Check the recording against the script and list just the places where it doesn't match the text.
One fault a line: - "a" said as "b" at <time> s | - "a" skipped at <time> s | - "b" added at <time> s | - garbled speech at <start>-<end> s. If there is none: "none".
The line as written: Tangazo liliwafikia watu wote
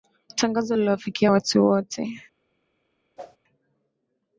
none